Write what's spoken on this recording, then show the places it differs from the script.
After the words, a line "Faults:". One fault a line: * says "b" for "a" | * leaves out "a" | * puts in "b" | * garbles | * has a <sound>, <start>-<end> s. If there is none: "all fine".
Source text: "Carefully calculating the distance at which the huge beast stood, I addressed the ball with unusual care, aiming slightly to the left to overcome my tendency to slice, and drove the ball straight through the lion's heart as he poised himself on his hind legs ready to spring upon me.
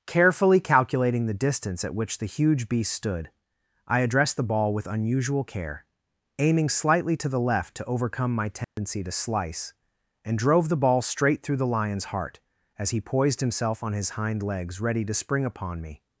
"Carefully calculating the distance at which the huge beast stood, I addressed the ball with unusual care, aiming slightly to the left to overcome my tendency to slice, and drove the ball straight through the lion's heart as he poised himself on his hind legs ready to spring upon me.
Faults:
* has a dropout, 8.6-8.8 s